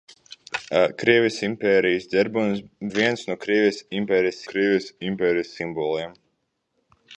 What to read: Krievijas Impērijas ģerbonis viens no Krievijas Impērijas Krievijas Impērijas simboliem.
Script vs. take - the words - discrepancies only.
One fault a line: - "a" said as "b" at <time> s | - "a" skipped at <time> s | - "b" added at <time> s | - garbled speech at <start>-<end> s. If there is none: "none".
none